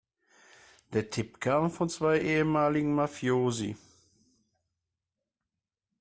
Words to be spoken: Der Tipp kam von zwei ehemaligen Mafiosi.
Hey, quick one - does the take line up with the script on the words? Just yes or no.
yes